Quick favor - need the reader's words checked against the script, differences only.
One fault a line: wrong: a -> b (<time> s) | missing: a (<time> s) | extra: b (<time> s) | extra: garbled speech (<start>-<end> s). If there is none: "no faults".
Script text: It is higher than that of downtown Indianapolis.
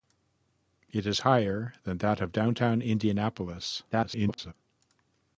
extra: garbled speech (3.9-4.5 s)